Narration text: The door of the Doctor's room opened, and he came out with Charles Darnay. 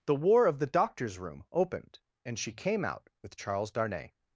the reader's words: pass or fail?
fail